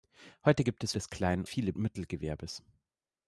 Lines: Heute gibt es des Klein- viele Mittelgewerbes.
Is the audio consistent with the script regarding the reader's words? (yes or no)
yes